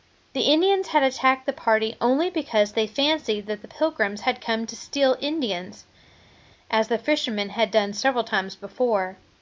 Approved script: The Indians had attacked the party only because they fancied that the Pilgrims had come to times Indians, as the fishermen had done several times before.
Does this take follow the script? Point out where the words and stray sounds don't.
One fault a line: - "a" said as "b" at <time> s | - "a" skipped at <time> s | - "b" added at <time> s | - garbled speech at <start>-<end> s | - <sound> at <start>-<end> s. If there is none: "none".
- "times" said as "steal" at 4.8 s